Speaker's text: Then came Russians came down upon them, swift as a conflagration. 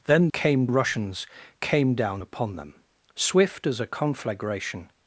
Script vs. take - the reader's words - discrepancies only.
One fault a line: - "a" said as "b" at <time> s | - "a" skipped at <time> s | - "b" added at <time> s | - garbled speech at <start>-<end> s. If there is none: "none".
none